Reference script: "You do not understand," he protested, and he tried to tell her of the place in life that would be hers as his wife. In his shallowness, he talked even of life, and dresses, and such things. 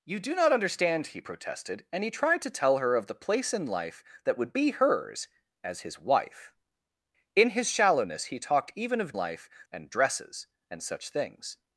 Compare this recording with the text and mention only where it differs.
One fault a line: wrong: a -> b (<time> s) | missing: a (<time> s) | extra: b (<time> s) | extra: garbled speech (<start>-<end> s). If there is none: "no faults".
no faults